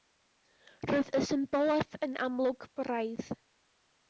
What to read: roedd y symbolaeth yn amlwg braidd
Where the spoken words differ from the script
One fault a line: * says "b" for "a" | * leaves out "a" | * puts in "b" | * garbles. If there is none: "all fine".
all fine